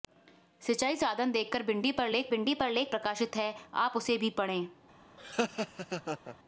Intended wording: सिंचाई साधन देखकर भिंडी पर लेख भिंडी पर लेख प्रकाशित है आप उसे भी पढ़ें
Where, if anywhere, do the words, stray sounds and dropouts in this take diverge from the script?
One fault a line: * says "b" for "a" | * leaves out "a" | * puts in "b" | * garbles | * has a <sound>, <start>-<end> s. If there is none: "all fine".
* has a laugh, 5.2-6.4 s